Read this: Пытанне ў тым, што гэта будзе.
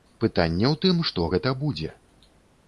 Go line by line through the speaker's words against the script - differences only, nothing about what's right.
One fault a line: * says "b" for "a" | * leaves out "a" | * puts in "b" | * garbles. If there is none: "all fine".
all fine